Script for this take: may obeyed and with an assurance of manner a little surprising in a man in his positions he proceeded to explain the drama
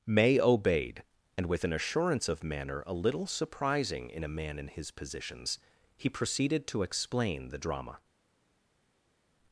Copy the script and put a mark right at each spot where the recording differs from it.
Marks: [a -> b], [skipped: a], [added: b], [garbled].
may obeyed and with an assurance of manner a little surprising in a man in his positions he proceeded to explain the drama